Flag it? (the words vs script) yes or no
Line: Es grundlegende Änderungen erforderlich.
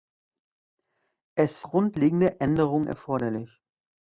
no